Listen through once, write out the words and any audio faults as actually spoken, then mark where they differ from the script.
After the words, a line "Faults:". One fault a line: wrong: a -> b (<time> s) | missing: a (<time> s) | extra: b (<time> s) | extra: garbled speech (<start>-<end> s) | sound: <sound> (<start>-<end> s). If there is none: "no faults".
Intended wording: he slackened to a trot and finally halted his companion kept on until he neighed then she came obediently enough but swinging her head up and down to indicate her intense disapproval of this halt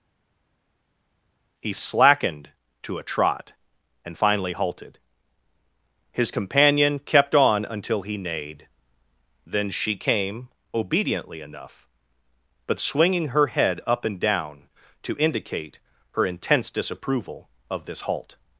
he slackened to a trot and finally halted his companion kept on until he neighed then she came obediently enough but swinging her head up and down to indicate her intense disapproval of this halt
Faults:
no faults